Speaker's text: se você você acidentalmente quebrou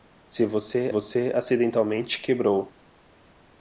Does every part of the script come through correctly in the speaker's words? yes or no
yes